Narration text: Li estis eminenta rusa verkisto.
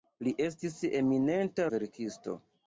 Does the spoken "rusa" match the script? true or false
false